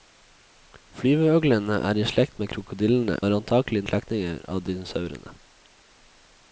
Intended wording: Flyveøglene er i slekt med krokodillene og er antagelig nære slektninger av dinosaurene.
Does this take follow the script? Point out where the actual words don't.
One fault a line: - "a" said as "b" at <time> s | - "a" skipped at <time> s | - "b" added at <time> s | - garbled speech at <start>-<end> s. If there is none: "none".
- "og" skipped at 3.2 s
- "nære" skipped at 3.8 s